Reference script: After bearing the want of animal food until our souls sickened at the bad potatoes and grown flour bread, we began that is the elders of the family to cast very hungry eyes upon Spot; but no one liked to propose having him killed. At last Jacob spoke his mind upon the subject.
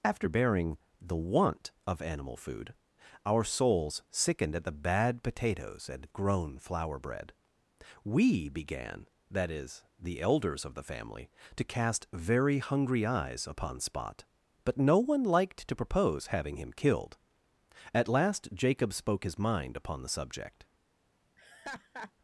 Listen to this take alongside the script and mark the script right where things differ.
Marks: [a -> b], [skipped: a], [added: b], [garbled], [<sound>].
After bearing the want of animal food [skipped: until] our souls sickened at the bad potatoes and grown flour bread, we began that is the elders of the family to cast very hungry eyes upon Spot; but no one liked to propose having him killed. At last Jacob spoke his mind upon the subject. [laugh]